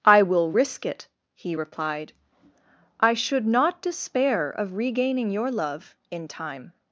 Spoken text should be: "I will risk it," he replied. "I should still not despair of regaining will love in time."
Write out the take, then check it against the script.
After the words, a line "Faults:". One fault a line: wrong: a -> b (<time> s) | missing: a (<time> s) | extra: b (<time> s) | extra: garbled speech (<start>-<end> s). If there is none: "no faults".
"I will risk it," he replied. "I should not despair of regaining your love in time."
Faults:
missing: still (3.5 s)
wrong: will -> your (5.3 s)